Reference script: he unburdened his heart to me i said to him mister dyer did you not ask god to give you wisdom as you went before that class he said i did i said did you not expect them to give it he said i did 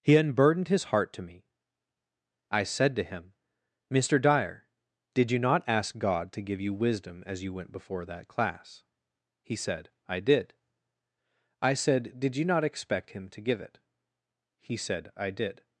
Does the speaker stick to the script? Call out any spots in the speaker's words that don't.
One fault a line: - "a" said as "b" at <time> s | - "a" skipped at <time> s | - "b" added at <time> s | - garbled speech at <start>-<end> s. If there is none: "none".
- "them" said as "him" at 13.1 s